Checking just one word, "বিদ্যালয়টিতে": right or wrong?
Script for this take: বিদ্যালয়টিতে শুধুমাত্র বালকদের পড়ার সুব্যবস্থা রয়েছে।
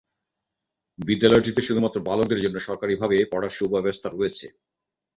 right